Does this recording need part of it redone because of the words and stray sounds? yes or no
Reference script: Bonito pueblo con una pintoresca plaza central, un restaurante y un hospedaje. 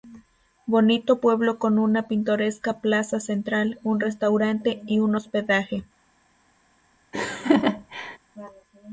yes